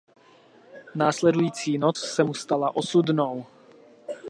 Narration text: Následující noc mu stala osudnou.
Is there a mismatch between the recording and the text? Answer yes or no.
yes